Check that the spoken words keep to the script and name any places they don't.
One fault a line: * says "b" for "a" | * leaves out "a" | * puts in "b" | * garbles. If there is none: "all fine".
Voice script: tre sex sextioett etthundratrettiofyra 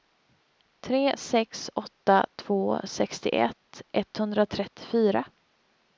* puts in "åtta två"